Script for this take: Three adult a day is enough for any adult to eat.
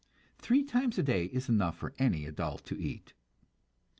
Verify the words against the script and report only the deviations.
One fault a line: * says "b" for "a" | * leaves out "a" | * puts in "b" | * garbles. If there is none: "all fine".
* says "times" for "adult"